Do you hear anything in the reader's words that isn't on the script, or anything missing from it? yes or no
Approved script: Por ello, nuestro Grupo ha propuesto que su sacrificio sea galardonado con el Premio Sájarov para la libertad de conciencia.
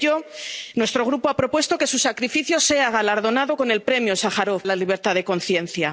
yes